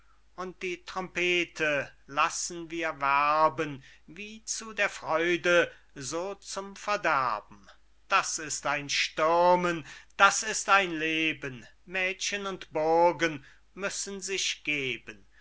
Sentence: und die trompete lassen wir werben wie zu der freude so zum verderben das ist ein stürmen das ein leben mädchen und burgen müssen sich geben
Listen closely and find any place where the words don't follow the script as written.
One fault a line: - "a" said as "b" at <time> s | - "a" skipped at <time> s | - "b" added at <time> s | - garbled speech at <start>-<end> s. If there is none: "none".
- "ist" added at 10.4 s